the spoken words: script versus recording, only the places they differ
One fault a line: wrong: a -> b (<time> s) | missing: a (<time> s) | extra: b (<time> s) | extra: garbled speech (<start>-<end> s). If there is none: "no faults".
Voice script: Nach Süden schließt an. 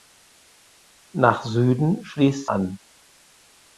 no faults